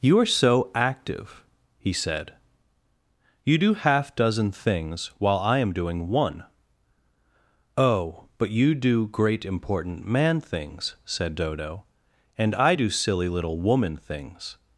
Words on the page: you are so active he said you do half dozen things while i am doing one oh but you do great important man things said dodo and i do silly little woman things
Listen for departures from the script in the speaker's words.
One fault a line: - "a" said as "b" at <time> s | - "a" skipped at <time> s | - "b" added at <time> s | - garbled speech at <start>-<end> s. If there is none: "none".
none